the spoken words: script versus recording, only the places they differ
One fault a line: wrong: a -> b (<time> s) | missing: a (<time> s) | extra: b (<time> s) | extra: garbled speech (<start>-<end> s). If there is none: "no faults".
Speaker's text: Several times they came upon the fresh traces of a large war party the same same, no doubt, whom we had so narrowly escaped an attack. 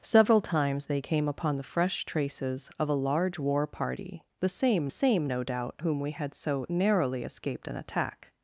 no faults